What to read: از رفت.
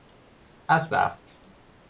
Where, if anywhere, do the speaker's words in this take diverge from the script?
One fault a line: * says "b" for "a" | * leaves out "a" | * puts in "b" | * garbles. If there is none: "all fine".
all fine